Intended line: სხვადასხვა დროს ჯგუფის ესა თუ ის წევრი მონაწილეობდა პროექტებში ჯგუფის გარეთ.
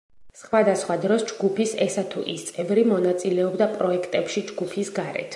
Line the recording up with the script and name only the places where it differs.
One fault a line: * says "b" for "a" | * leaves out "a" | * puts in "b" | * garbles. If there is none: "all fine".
all fine